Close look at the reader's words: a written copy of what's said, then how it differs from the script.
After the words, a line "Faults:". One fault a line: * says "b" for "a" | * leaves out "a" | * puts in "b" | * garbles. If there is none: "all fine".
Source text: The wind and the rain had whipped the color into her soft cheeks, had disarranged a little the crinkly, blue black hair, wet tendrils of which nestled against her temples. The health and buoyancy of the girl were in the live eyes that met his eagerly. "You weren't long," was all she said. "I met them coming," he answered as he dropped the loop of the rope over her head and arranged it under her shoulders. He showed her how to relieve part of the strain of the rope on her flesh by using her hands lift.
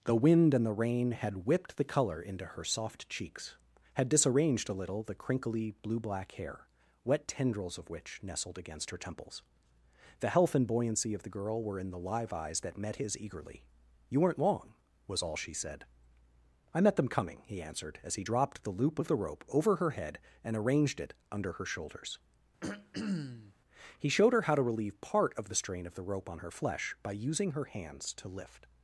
The wind and the rain had whipped the color into her soft cheeks, had disarranged a little the crinkly, blue black hair, wet tendrils of which nestled against her temples. The health and buoyancy of the girl were in the live eyes that met his eagerly. "You weren't long," was all she said. "I met them coming," he answered as he dropped the loop of the rope over her head and arranged it under her shoulders. He showed her how to relieve part of the strain of the rope on her flesh by using her hands to lift.
Faults:
* puts in "to"